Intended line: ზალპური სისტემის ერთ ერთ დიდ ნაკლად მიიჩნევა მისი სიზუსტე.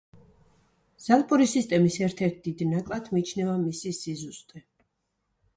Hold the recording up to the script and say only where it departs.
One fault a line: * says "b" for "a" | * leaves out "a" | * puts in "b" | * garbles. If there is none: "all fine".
all fine